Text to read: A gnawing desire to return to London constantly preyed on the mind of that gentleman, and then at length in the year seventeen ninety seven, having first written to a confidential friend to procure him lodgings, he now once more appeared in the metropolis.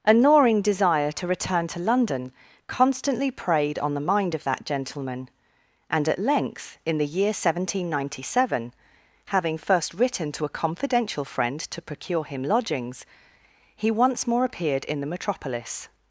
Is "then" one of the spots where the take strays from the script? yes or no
yes